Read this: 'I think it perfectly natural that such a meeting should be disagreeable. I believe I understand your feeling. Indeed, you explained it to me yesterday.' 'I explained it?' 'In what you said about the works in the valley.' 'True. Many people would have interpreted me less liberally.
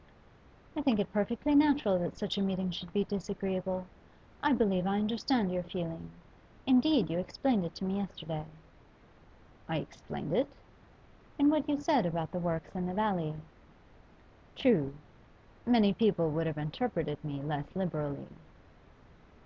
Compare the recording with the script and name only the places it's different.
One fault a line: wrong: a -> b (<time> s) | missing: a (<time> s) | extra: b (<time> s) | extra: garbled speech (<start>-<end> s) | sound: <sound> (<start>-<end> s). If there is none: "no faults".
no faults